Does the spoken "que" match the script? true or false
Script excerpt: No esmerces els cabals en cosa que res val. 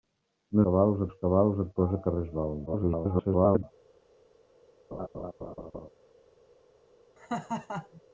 true